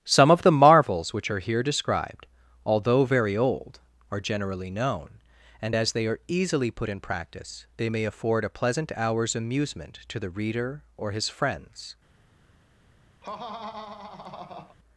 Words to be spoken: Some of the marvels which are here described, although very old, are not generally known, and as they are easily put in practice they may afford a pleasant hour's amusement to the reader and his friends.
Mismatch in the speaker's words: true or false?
true